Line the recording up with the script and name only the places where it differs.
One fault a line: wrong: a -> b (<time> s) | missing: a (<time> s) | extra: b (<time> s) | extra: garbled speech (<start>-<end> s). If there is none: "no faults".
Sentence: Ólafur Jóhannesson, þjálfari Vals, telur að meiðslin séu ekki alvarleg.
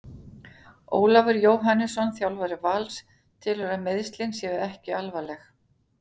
no faults